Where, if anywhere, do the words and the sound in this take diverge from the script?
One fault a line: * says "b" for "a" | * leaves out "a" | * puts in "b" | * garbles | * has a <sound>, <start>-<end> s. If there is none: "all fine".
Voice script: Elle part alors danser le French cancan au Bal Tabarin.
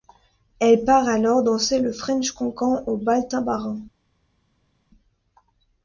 all fine